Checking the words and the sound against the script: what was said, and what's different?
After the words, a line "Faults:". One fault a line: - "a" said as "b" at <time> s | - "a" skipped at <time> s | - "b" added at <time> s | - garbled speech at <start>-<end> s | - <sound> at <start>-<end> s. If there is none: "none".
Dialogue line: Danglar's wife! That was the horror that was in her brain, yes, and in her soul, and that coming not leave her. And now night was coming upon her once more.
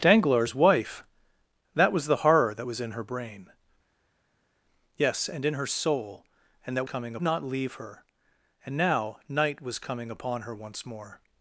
Danglar's wife! That was the horror that was in her brain, yes, and in her soul, and that coming not leave her. And now night was coming upon her once more.
Faults:
none